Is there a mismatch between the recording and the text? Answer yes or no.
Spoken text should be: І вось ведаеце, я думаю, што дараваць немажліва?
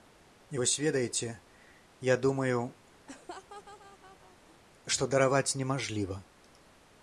no